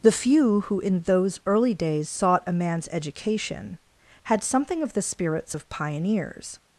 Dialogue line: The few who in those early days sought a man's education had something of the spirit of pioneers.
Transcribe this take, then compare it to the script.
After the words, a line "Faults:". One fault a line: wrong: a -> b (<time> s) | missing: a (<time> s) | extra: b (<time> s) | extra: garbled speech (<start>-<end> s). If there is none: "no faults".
The few who in those early days sought a man's education had something of the spirits of pioneers.
Faults:
wrong: spirit -> spirits (5.0 s)